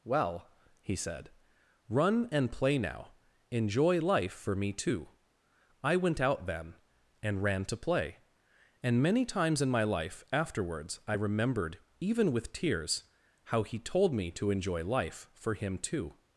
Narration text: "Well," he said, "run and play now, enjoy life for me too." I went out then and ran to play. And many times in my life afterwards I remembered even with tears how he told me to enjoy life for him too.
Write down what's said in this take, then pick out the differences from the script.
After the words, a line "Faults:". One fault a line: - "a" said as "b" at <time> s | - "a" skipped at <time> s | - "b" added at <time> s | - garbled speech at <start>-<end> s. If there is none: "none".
"Well," he said, "run and play now, enjoy life for me too." I went out then and ran to play. And many times in my life afterwards I remembered even with tears how he told me to enjoy life for him too.
Faults:
none